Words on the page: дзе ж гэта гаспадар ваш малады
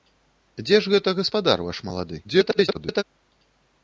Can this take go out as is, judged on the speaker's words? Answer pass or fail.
fail